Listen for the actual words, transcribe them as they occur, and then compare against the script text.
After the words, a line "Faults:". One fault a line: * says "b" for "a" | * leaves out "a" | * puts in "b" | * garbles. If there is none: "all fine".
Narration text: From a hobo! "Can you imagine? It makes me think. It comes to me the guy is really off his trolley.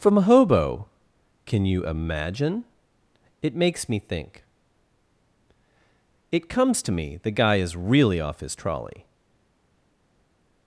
From a hobo! "Can you imagine? It makes me think. It comes to me the guy is really off his trolley.
Faults:
all fine